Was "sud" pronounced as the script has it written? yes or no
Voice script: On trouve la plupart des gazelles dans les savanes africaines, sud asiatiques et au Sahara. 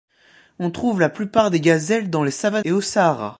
no